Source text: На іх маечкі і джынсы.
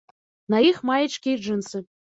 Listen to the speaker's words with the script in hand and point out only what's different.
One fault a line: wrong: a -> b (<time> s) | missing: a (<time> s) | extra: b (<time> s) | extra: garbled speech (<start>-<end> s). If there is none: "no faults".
no faults